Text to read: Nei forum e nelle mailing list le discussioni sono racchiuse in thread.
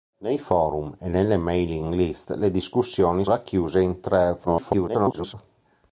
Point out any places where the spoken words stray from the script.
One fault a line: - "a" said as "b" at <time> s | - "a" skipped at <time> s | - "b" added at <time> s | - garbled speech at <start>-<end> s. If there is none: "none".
- "sono" skipped at 3.2 s
- garbled speech at 4.5-5.3 s